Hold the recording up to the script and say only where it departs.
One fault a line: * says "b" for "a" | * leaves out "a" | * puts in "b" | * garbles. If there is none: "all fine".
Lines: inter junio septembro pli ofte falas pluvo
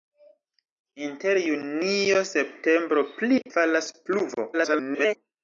* leaves out "ofte"
* garbles